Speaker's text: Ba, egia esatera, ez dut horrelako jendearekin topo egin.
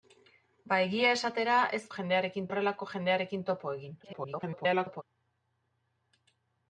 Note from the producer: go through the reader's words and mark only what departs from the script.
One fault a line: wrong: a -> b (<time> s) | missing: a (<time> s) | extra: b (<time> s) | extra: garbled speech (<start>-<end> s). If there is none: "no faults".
wrong: dut -> jendearekin (1.9 s)
extra: garbled speech (4.0-5.0 s)